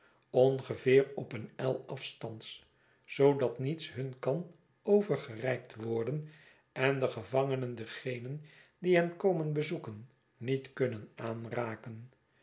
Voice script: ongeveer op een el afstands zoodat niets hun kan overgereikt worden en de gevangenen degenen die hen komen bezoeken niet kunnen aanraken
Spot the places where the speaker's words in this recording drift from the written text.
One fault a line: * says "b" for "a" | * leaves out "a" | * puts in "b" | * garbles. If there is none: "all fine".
all fine